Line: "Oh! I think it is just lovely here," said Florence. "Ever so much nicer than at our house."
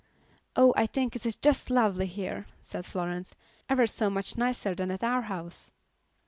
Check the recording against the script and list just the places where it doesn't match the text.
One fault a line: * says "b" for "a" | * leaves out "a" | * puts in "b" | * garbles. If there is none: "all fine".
all fine